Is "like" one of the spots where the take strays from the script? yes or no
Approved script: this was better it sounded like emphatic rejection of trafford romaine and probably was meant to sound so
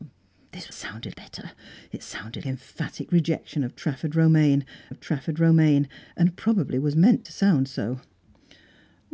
yes